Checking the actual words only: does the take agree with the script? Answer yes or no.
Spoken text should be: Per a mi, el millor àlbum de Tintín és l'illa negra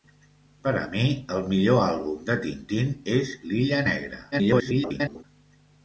no